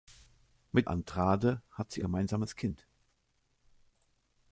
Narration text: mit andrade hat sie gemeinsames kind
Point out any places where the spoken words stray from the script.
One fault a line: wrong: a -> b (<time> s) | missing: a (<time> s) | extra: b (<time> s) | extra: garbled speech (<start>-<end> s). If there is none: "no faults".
no faults